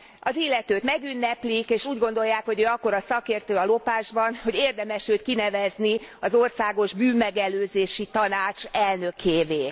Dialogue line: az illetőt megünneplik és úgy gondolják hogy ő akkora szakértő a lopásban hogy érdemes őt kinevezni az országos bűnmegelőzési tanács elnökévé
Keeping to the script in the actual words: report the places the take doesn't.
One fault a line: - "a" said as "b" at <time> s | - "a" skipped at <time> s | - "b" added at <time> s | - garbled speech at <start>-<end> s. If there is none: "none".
none